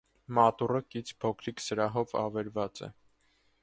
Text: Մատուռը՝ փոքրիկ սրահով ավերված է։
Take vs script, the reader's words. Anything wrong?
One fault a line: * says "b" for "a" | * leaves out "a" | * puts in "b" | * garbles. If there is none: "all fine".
* puts in "կից"